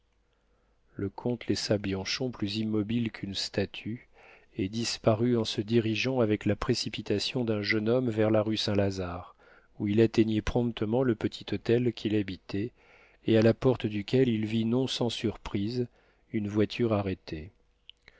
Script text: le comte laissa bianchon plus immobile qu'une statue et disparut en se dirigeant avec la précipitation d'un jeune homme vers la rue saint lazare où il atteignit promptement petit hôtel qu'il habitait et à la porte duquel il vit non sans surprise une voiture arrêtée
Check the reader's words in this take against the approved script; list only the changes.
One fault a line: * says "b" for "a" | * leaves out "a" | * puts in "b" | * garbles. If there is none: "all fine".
* puts in "le"